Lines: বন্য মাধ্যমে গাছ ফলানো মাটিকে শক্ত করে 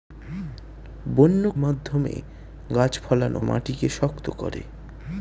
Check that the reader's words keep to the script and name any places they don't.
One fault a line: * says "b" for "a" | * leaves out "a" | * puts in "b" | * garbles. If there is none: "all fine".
all fine